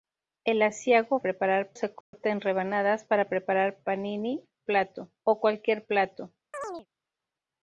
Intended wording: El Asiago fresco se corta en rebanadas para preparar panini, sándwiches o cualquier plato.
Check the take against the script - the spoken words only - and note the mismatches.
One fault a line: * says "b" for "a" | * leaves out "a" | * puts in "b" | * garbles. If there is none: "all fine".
* says "preparar" for "fresco"
* says "plato" for "sándwiches"